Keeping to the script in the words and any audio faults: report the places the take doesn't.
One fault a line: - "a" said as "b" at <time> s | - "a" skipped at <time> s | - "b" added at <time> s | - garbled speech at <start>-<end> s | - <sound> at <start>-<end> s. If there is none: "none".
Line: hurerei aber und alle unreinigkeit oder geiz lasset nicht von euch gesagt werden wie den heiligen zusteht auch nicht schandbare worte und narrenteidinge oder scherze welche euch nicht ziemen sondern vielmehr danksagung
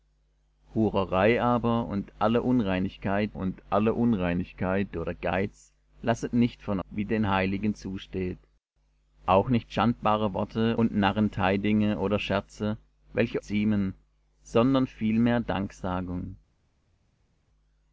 - "und alle unreinigkeit" added at 3.3 s
- "euch gesagt werden" skipped at 6.8 s
- "euch nicht" skipped at 13.4 s